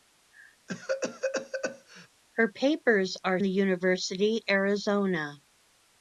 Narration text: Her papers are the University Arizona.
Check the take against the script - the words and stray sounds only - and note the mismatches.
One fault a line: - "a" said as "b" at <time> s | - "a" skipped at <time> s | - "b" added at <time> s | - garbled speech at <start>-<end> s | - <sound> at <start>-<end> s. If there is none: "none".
- cough at 0.7-2.1 s